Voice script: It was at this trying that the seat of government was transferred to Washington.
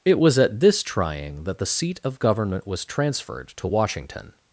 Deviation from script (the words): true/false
false